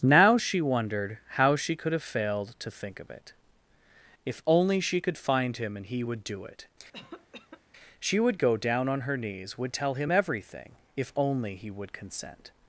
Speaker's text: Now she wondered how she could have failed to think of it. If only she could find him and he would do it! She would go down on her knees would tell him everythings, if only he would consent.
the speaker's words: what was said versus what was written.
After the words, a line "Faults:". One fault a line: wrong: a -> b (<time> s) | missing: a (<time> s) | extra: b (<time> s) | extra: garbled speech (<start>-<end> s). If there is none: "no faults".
Now she wondered how she could have failed to think of it. If only she could find him and he would do it! She would go down on her knees would tell him everything, if only he would consent.
Faults:
wrong: everythings -> everything (10.1 s)